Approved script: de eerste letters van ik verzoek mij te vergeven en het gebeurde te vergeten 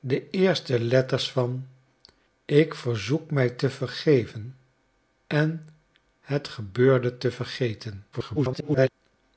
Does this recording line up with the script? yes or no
no